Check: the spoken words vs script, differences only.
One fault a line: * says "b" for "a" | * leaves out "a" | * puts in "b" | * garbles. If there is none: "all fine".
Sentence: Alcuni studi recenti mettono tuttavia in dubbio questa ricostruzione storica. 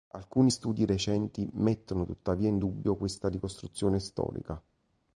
all fine